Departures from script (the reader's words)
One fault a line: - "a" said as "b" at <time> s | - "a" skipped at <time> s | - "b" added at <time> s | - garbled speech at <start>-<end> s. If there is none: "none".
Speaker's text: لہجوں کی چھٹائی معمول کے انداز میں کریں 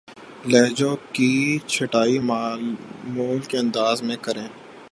none